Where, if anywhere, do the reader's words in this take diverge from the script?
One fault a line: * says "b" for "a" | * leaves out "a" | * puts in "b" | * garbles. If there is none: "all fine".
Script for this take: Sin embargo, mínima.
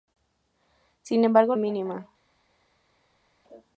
all fine